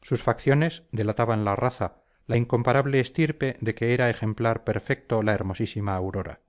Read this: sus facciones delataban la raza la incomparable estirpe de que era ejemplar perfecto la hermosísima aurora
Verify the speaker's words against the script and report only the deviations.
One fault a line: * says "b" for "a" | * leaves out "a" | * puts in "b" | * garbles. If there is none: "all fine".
all fine